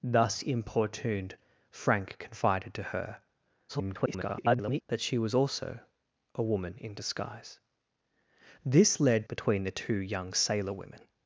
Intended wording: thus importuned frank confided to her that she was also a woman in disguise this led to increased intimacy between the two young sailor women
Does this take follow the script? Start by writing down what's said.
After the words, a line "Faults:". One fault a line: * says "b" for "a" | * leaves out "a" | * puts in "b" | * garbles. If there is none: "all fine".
thus importuned frank confided to her [garbled] that she was also a woman in disguise this led between the two young sailor women
Faults:
* garbles
* leaves out "to increased intimacy"